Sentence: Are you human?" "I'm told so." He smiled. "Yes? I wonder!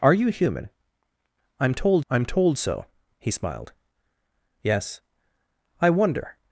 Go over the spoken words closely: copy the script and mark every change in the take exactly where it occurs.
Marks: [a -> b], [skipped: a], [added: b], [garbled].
Are you human?" "I'm told [added: I'm told] so." He smiled. "Yes? I wonder!